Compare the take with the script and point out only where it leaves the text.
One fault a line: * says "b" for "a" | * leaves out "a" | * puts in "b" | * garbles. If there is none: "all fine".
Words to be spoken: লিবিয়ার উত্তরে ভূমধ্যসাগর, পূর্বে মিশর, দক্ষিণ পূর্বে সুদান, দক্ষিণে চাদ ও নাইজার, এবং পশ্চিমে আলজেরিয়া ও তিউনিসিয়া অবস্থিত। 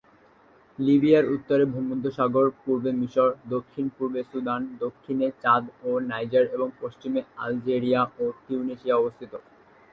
all fine